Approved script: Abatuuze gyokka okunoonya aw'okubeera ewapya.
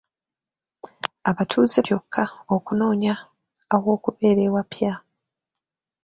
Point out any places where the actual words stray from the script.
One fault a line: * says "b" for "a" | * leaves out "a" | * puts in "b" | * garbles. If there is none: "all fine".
all fine